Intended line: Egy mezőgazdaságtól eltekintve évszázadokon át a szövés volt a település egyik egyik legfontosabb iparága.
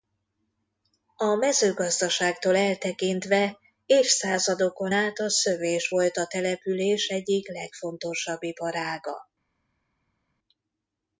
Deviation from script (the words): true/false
true